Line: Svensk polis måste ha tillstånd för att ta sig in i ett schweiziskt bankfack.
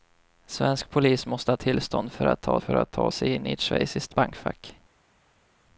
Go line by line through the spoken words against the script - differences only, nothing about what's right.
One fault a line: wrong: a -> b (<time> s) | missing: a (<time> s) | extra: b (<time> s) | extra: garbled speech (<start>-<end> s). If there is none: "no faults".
extra: för att ta (2.6 s)